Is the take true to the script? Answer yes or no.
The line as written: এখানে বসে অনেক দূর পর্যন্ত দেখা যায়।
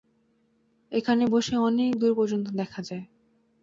yes